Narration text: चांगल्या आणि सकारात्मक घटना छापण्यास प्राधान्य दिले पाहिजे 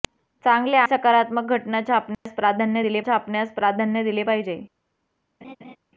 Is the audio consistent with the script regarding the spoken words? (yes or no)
no